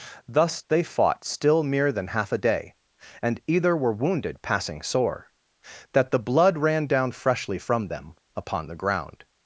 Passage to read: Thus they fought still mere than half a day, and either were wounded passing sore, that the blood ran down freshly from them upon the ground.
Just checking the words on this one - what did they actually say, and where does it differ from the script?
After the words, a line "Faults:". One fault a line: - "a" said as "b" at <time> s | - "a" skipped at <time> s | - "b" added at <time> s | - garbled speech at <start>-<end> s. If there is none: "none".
Thus they fought still mere than half a day, and either were wounded passing sore, that the blood ran down freshly from them upon the ground.
Faults:
none